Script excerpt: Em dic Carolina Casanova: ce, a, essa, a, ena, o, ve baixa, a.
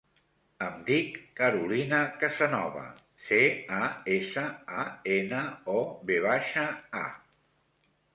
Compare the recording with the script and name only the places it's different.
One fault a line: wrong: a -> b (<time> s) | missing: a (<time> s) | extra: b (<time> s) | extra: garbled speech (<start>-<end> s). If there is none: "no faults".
no faults